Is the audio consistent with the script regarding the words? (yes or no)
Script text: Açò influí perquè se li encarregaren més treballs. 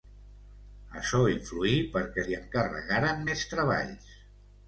no